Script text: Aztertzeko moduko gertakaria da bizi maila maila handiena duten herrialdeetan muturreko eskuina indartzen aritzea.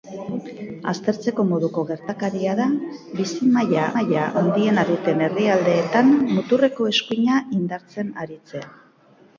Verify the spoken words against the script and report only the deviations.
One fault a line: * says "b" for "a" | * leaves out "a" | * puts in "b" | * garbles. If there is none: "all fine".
all fine